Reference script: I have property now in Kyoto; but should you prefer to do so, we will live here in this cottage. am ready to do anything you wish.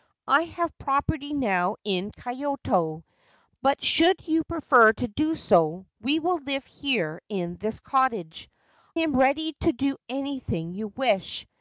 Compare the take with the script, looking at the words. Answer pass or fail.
pass